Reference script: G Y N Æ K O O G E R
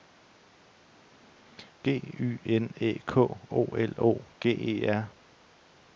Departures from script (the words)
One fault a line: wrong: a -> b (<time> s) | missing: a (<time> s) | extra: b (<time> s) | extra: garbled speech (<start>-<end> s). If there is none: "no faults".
extra: L (3.7 s)